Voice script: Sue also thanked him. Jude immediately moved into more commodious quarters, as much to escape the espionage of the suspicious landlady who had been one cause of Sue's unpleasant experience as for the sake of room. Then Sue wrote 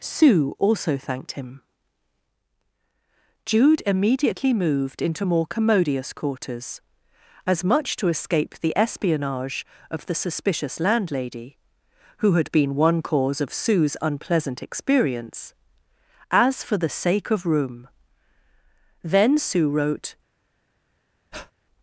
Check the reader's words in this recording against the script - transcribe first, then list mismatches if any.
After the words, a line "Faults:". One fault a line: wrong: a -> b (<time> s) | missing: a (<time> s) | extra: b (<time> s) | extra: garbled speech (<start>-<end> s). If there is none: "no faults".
Sue also thanked him. Jude immediately moved into more commodious quarters, as much to escape the espionage of the suspicious landlady who had been one cause of Sue's unpleasant experience as for the sake of room. Then Sue wrote
Faults:
no faults